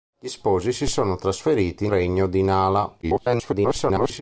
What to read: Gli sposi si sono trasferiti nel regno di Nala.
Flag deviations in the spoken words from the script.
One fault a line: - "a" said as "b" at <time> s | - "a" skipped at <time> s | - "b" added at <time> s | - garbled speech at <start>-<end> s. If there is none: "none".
- "nel" skipped at 1.9 s
- garbled speech at 3.0-4.2 s